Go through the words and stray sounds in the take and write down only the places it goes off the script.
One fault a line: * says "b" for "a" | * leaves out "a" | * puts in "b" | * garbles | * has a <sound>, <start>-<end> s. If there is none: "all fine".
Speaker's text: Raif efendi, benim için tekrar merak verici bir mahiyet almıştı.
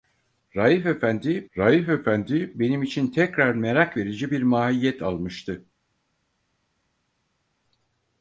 * puts in "raif efendi"